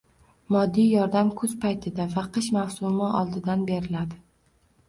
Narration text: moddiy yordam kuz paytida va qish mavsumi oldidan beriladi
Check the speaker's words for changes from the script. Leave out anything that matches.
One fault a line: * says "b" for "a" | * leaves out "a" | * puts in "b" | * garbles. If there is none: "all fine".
all fine